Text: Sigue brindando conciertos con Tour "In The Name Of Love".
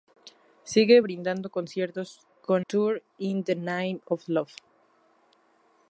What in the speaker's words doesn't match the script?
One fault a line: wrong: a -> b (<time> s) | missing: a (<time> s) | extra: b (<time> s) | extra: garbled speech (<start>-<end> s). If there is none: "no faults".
no faults